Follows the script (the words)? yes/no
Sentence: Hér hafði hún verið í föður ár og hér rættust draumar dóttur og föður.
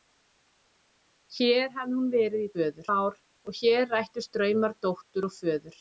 yes